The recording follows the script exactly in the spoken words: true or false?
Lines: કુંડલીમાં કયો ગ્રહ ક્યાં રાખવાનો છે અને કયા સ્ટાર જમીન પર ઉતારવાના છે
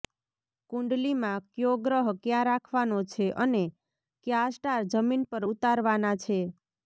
true